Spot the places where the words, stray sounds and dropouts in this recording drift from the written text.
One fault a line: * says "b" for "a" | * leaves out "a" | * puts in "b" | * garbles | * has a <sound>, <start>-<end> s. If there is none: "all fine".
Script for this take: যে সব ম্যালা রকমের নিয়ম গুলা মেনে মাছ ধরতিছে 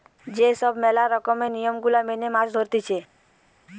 all fine